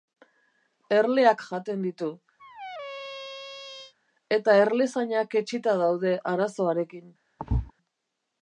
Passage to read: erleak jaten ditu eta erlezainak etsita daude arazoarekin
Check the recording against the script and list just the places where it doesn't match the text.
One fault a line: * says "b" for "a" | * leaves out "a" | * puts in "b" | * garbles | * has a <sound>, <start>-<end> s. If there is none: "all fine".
* has a squeak, 2.4-3.9 s
* has a thud, 7.4-7.7 s